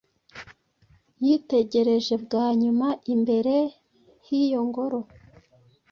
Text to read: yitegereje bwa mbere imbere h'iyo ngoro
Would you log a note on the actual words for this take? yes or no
yes